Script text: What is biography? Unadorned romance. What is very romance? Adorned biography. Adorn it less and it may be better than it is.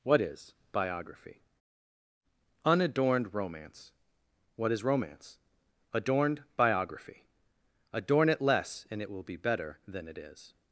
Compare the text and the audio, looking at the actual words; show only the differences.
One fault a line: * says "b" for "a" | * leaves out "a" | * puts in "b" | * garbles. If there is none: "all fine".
* leaves out "very"
* says "will" for "may"